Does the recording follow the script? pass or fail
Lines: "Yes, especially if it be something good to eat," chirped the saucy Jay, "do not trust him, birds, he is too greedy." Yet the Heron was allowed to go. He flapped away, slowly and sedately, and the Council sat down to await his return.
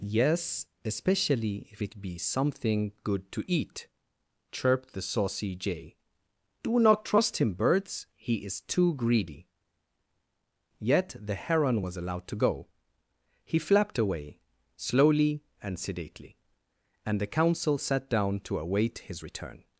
pass